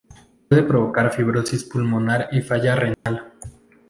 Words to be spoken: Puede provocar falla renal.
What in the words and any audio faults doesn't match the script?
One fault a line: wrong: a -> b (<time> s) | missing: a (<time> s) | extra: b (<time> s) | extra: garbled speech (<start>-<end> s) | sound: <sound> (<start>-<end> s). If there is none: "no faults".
extra: fibrosis pulmonar y (1.1 s)
sound: dropout (2.9-3.1 s)